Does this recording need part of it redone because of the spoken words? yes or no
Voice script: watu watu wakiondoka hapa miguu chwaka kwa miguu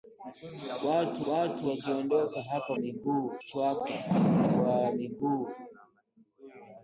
no